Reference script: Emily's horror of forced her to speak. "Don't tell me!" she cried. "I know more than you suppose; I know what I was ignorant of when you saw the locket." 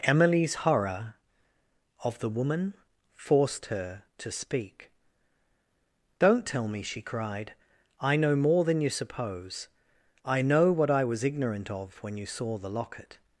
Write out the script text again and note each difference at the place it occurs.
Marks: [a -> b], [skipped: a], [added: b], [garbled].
Emily's horror of [added: the woman] forced her to speak. "Don't tell me!" she cried. "I know more than you suppose; I know what I was ignorant of when you saw the locket."